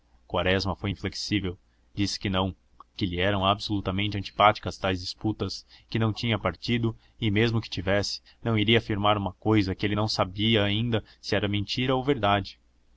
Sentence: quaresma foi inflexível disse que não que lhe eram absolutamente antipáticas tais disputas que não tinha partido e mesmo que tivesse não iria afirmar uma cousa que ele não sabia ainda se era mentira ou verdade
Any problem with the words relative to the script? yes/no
no